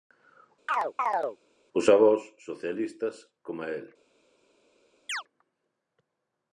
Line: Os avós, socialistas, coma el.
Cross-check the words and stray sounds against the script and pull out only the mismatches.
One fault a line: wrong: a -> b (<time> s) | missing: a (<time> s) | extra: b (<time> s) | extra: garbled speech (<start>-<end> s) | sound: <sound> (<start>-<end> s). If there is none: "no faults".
sound: chirp (0.7-1.4 s)
sound: chirp (5.1-5.2 s)